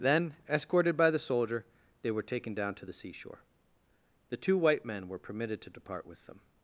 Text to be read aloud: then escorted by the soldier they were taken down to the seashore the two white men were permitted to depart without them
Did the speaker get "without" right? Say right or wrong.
wrong